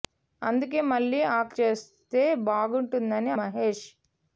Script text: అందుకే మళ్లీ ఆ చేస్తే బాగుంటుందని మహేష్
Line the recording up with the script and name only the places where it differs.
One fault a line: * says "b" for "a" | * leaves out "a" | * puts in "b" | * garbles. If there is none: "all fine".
all fine